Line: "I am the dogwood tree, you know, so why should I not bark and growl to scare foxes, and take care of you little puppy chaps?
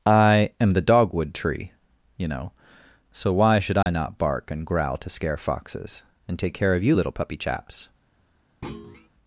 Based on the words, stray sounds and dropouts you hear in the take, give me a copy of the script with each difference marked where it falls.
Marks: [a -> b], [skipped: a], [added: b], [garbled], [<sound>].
"I am the dogwood tree, you know, so why should I [dropout] not bark and growl to scare foxes, and take care of you little puppy chaps? [thud]